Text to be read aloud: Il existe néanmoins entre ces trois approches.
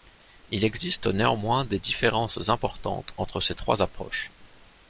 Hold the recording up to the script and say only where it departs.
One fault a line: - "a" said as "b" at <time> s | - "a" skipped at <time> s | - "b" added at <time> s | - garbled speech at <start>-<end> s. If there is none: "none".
- "des différences importantes" added at 1.6 s